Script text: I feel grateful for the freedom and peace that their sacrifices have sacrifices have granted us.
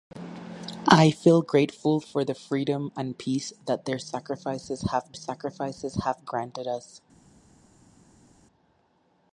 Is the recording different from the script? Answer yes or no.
no